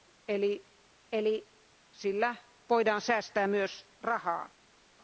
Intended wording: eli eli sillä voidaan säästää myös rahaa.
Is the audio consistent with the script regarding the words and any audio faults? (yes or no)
yes